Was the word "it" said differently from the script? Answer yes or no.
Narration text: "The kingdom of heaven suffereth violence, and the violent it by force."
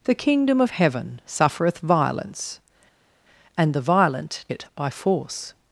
no